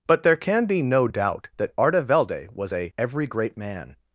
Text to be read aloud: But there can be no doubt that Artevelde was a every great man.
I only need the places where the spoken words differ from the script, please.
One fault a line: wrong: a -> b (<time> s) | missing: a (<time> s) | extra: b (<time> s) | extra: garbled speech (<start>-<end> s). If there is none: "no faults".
no faults